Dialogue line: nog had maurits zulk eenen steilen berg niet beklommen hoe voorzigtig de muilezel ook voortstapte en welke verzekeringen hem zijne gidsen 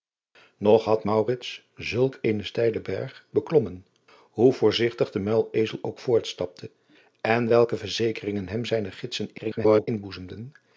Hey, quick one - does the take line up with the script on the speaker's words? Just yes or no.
no